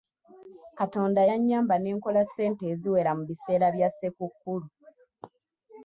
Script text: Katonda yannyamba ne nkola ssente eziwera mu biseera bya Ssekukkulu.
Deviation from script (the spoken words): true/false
false